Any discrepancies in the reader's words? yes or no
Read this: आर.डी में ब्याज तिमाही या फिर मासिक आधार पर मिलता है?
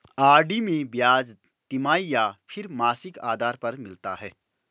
no